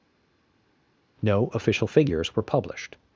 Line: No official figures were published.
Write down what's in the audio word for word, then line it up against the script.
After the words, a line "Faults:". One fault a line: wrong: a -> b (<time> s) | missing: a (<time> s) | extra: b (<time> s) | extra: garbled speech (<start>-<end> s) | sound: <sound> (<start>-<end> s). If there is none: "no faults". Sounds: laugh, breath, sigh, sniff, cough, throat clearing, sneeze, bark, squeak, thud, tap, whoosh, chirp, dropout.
No official figures were published.
Faults:
no faults